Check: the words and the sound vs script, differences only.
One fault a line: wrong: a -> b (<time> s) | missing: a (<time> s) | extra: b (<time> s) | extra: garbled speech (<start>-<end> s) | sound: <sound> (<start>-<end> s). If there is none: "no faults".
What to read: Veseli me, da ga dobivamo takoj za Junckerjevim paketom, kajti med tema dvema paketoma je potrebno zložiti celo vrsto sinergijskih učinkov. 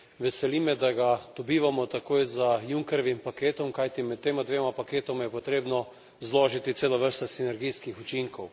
no faults